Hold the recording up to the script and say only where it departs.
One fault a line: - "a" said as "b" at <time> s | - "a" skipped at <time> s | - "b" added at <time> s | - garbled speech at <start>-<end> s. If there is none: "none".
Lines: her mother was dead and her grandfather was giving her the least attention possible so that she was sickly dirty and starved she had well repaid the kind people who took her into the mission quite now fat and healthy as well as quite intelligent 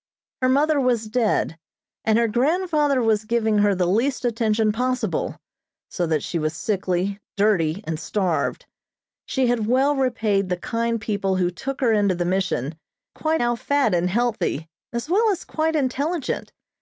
none